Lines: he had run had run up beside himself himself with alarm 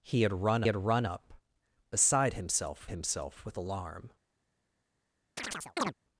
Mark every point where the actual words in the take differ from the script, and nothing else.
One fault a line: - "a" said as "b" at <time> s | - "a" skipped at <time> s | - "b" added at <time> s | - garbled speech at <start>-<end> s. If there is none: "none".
none